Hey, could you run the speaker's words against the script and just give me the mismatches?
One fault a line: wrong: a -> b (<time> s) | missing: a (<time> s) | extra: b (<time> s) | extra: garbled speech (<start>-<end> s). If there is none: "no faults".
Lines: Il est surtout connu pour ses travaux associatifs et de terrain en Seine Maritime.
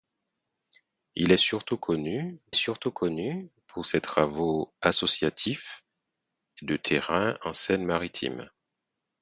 extra: surtout connu (2.5 s)
missing: et (5.8 s)